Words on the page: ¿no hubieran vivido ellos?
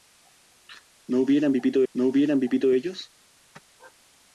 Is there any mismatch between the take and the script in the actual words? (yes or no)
yes